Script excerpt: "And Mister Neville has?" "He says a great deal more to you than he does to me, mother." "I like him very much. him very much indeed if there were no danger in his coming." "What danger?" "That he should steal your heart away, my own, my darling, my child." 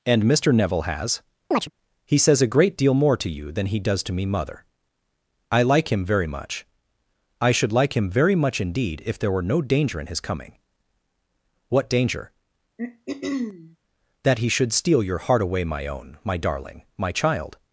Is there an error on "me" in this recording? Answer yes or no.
no